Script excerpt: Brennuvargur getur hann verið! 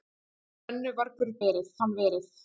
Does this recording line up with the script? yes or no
no